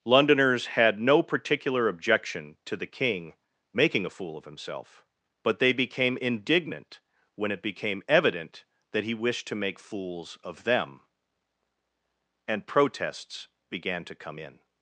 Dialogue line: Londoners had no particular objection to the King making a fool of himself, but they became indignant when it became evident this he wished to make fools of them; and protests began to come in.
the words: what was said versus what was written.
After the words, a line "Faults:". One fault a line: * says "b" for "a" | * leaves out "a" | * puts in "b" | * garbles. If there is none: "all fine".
Londoners had no particular objection to the King making a fool of himself, but they became indignant when it became evident that he wished to make fools of them; and protests began to come in.
Faults:
* says "that" for "this"